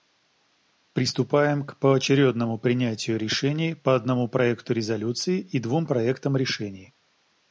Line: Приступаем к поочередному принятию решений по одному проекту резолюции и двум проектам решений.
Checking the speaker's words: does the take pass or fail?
pass